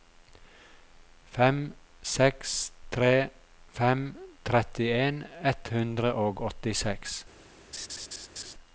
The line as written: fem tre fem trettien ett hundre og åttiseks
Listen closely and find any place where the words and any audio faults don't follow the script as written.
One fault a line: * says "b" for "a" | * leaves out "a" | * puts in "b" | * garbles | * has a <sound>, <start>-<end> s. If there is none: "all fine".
* puts in "seks"
* has a laugh, 7.7-8.5 s